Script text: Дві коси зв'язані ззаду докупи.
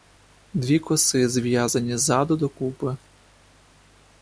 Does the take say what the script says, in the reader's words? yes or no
yes